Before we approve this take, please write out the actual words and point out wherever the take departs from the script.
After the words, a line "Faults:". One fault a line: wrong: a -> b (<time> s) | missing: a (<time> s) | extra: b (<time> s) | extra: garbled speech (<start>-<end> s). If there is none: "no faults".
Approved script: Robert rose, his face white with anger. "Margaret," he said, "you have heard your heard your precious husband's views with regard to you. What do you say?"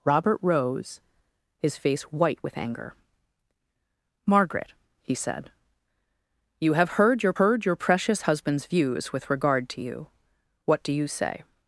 Robert rose, his face white with anger. "Margaret," he said, "you have heard your heard your precious husband's views with regard to you. What do you say?"
Faults:
no faults